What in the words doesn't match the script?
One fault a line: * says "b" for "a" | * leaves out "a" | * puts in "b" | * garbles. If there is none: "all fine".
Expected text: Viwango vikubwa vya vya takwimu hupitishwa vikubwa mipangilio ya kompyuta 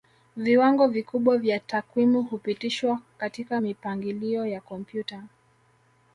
* leaves out "vya"
* says "katika" for "vikubwa"